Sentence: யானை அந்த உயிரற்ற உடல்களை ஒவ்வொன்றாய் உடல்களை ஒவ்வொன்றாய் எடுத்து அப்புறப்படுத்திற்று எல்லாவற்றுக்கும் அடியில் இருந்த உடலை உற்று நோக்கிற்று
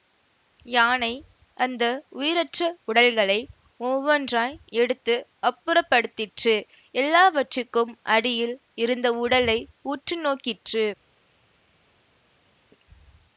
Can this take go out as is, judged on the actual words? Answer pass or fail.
fail